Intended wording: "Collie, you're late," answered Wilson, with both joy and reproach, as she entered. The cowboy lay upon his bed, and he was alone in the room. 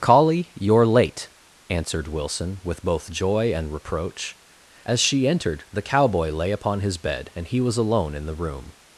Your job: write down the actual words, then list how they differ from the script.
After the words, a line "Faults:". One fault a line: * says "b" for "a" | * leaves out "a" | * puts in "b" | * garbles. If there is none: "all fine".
"Collie, you're late," answered Wilson, with both joy and reproach, as she entered. The cowboy lay upon his bed, and he was alone in the room.
Faults:
all fine